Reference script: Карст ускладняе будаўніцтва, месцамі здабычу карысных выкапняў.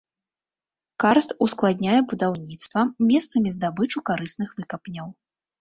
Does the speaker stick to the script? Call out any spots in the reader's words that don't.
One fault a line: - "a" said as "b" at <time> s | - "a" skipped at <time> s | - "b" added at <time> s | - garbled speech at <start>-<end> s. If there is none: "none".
none